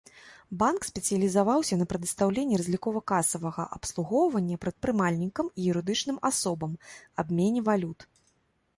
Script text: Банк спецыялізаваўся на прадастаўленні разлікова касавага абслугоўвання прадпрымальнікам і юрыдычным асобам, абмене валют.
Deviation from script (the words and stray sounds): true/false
false